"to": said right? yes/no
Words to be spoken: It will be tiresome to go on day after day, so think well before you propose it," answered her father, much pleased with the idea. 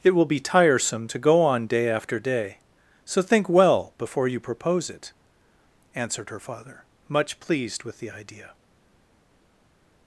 yes